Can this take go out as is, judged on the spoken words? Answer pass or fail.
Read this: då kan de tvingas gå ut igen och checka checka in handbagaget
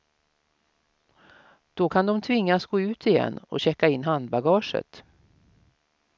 fail